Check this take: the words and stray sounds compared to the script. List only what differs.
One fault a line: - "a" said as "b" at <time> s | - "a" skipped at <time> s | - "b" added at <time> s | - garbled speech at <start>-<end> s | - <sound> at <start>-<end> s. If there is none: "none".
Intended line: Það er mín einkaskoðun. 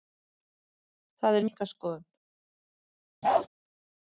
- "mín" skipped at 1.5 s
- bark at 3.2-3.5 s